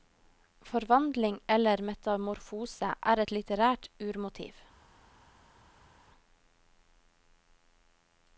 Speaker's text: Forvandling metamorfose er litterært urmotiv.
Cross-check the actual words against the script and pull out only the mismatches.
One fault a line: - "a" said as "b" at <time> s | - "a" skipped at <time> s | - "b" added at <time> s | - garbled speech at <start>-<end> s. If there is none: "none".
- "eller" added at 1.6 s
- "et" added at 3.2 s